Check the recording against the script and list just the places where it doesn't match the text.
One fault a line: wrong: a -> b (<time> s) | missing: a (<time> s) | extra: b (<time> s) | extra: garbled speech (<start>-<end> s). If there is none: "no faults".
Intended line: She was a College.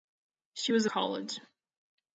no faults